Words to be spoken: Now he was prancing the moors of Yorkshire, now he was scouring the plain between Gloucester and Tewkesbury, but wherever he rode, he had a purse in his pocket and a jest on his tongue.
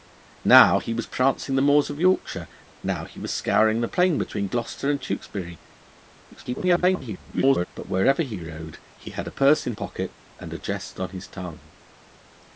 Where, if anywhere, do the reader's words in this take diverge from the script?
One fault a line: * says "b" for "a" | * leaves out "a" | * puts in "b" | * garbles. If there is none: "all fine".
* garbles
* leaves out "his"